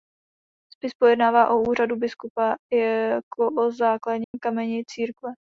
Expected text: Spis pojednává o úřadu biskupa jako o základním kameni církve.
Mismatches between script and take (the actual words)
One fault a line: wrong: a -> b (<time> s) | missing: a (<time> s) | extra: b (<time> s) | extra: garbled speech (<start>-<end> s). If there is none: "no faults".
no faults